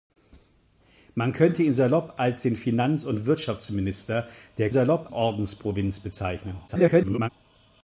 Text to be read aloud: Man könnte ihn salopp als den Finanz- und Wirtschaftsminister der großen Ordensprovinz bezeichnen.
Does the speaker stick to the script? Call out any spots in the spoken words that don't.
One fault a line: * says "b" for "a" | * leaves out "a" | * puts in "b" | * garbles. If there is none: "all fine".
* says "salopp" for "großen"
* garbles